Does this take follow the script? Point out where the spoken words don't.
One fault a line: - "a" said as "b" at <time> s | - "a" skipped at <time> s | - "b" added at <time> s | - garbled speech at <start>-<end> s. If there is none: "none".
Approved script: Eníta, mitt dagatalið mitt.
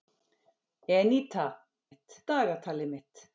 none